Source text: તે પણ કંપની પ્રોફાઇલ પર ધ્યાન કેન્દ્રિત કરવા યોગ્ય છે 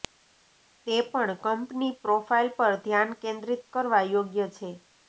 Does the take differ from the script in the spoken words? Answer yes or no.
no